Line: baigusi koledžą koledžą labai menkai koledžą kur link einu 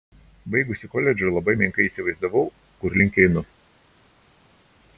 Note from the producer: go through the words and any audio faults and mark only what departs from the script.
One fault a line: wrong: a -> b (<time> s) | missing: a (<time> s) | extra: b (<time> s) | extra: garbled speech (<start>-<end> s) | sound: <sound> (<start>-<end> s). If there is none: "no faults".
missing: koledžą (1.3 s)
wrong: koledžą -> įsivaizdavau (1.9 s)